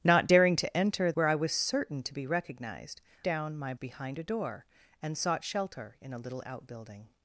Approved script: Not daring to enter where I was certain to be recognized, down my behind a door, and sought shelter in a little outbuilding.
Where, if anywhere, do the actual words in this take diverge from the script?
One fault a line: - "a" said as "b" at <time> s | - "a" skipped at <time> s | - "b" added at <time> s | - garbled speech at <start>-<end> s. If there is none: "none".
none